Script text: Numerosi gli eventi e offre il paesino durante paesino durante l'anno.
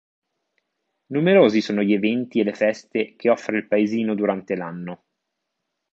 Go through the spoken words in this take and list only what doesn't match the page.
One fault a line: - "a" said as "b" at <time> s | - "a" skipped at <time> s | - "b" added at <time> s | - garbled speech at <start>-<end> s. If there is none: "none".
- "sono" added at 1.6 s
- "le feste che" added at 2.4 s
- "paesino durante" skipped at 4.5 s